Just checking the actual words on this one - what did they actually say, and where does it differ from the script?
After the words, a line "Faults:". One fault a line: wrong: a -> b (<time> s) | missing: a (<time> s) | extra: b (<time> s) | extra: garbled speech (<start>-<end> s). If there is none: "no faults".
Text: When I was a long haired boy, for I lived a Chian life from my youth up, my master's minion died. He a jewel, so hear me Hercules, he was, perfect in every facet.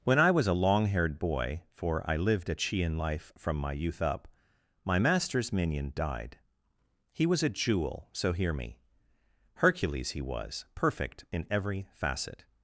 When I was a long haired boy, for I lived a Chian life from my youth up, my master's minion died. He was a jewel, so hear me Hercules, he was, perfect in every facet.
Faults:
extra: was (7.3 s)